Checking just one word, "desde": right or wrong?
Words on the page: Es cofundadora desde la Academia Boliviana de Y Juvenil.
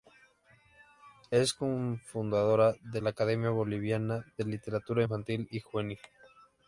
wrong